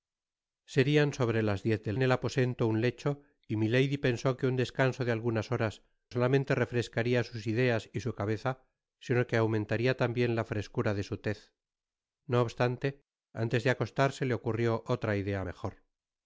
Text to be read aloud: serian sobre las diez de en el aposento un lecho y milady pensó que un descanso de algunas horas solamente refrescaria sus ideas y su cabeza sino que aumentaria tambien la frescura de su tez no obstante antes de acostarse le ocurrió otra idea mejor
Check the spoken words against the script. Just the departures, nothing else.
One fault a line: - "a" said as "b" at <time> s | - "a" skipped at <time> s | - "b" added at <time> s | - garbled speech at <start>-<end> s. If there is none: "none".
none